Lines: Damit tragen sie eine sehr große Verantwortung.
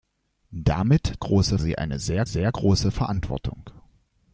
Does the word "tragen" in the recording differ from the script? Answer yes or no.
yes